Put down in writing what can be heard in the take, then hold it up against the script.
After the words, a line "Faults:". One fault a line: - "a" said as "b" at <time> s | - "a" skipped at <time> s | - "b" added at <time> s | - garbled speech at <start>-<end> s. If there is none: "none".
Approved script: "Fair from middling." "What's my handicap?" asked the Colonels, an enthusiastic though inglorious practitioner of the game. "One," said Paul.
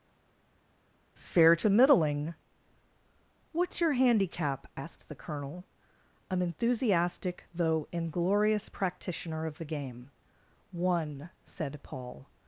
"Fair to middling." "What's your handicap?" asked the Colonel, an enthusiastic though inglorious practitioner of the game. "One," said Paul.
Faults:
- "from" said as "to" at 1.5 s
- "my" said as "your" at 3.8 s
- "Colonels" said as "Colonel" at 5.1 s